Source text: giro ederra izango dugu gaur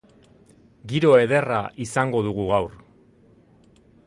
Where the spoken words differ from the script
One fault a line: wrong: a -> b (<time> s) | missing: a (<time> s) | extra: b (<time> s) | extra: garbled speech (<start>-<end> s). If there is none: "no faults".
no faults